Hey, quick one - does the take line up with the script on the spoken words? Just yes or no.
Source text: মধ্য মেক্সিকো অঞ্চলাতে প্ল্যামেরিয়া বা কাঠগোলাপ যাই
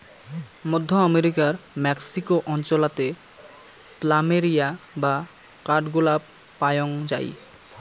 no